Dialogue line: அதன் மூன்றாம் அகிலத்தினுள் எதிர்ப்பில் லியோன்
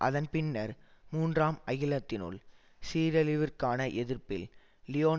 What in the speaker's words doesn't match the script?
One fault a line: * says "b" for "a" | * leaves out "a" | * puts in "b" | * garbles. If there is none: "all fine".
* puts in "பின்னர்"
* puts in "சீரழிவிற்கான"